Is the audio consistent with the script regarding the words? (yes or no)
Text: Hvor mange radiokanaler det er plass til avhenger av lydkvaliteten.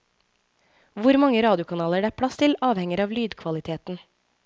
yes